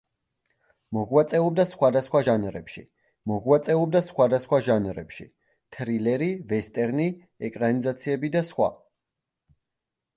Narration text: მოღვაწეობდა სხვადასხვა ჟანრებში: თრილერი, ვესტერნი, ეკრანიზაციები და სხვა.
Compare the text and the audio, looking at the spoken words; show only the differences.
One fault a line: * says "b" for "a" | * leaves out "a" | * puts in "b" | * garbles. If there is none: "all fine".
* puts in "მოღვაწეობდა სხვადასხვა ჟანრებში"